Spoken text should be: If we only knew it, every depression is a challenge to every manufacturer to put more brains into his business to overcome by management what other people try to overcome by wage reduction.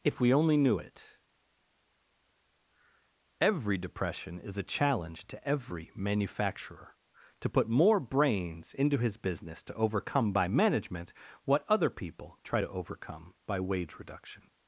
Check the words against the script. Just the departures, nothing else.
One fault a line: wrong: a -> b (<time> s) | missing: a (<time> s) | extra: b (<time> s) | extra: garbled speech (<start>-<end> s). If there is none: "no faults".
no faults